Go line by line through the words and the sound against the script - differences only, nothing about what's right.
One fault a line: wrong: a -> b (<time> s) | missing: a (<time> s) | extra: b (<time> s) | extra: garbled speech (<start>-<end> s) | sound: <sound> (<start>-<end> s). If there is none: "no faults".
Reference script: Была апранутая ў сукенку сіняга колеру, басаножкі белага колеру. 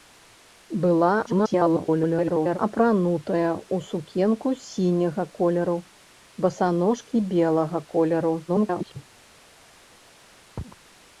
extra: garbled speech (1.3-2.6 s)
extra: garbled speech (8.5-9.1 s)